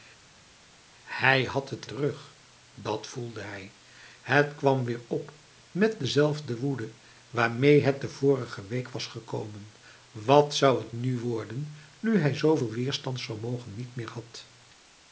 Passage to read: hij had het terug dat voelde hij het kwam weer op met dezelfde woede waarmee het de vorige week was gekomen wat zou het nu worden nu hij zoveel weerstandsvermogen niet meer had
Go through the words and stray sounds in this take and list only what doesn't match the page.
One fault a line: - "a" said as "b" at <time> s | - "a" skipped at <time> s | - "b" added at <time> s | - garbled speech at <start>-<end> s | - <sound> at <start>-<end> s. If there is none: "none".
none